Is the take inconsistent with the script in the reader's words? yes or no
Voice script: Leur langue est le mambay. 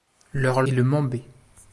yes